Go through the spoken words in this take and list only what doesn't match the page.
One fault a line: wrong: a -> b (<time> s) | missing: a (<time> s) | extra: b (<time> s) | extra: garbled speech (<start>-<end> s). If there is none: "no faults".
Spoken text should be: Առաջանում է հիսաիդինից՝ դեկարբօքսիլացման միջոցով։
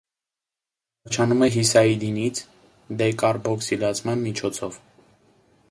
no faults